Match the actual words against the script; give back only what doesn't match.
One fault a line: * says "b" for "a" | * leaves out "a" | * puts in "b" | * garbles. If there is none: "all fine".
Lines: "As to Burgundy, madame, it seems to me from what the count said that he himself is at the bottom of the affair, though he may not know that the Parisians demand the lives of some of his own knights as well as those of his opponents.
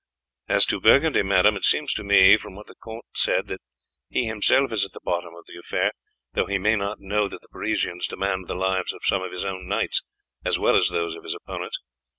all fine